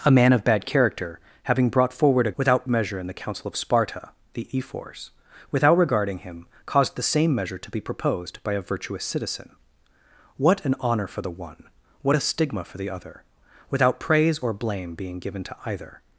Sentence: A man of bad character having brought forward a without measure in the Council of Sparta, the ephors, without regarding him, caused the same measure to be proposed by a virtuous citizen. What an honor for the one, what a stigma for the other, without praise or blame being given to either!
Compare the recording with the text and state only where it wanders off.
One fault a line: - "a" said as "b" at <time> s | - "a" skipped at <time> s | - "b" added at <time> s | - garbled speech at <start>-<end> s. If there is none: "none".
none